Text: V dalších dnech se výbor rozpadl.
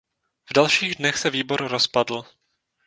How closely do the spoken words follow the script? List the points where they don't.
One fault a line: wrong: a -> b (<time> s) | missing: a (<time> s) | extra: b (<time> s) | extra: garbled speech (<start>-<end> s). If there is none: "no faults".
no faults